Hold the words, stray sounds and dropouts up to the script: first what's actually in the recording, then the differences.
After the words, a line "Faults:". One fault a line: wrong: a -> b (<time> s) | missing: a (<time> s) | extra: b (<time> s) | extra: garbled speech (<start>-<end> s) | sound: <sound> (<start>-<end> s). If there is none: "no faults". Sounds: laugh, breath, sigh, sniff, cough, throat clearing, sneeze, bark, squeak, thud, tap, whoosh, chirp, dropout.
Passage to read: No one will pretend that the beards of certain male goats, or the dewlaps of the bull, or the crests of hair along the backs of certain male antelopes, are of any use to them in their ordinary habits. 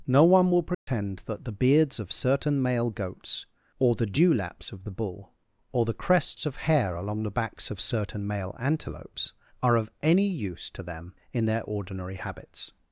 No one will pretend that the beards of certain male goats, or the dewlaps of the bull, or the crests of hair along the backs of certain male antelopes, are of any use to them in their ordinary habits.
Faults:
sound: dropout (0.7-0.9 s)